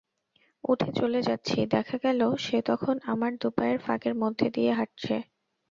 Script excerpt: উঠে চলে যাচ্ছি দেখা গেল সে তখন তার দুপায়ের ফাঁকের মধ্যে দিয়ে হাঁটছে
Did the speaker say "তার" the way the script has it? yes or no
no